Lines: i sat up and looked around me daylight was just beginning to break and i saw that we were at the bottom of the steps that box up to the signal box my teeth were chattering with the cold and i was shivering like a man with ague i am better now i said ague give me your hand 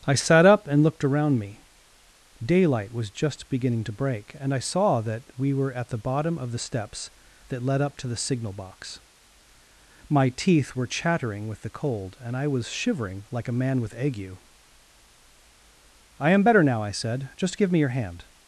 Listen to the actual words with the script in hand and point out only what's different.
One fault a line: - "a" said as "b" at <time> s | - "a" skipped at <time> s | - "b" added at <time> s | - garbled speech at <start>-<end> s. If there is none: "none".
- "box" said as "led" at 7.7 s
- "ague" said as "just" at 17.3 s